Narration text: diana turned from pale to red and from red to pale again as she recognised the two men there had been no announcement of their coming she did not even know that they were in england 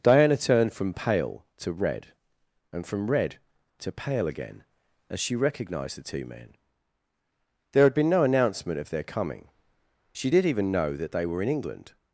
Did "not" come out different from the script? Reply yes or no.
yes